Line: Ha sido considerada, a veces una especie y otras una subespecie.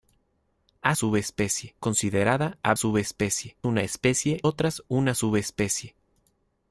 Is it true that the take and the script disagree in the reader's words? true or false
true